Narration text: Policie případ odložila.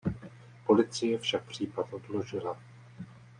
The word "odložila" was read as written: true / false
true